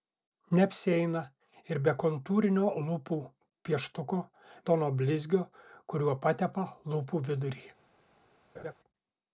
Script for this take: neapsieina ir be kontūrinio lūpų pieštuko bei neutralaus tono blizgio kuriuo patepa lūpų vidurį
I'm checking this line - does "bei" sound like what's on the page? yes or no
no